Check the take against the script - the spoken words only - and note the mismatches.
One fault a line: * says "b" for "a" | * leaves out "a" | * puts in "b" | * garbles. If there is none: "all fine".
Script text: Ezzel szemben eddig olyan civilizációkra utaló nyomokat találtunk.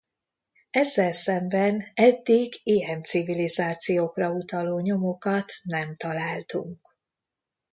* says "ilyen" for "olyan"
* puts in "nem"